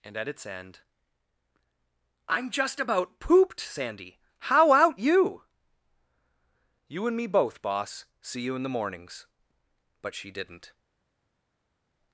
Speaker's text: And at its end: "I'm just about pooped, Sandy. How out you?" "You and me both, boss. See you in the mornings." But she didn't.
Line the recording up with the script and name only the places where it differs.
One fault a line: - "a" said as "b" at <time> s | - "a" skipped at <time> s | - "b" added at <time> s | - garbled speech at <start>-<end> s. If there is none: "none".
none